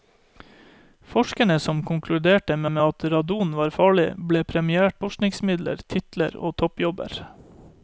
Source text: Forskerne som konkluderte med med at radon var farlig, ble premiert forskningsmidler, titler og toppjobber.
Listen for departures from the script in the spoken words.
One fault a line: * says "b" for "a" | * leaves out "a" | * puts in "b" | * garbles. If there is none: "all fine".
all fine